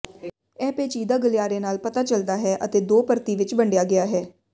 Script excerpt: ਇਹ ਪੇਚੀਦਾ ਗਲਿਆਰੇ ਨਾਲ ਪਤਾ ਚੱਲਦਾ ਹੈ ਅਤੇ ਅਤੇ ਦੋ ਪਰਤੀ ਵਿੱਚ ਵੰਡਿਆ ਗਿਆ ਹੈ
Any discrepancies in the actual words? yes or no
yes